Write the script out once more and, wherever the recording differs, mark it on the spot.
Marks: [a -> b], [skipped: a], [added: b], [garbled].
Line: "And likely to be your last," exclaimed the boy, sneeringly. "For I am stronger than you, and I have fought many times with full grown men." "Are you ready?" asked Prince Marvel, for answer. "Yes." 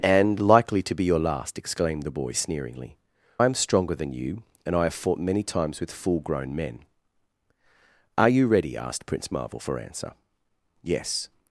"And likely to be your last," exclaimed the boy, sneeringly. [skipped: "For] I am stronger than you, and I have fought many times with full grown men." "Are you ready?" asked Prince Marvel, for answer. "Yes."